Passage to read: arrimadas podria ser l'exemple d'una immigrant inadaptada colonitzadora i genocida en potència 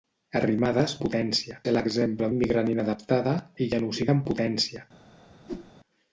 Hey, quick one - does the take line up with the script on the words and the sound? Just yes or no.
no